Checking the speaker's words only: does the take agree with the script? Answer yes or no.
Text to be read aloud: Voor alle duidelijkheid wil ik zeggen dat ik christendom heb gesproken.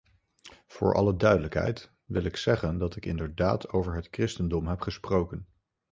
no